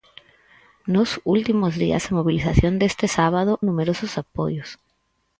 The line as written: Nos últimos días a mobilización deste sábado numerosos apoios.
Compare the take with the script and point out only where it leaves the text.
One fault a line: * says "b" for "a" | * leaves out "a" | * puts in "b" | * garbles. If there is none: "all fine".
all fine